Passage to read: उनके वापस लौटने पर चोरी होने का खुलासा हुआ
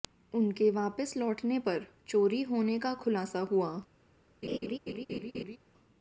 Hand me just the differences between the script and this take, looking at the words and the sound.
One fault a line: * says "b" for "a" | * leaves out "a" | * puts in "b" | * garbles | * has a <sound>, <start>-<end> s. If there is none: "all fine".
* has a laugh, 4.4-5.6 s